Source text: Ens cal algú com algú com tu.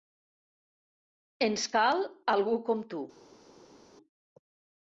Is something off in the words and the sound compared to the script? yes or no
yes